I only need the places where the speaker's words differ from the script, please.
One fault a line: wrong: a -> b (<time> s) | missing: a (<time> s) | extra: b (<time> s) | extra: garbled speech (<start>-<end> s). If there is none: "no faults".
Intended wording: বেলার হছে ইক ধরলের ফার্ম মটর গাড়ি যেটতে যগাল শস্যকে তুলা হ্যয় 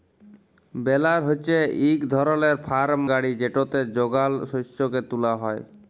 missing: মটর (3.0 s)